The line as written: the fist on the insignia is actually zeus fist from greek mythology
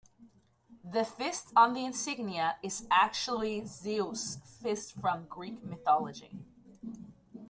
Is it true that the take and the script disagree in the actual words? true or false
false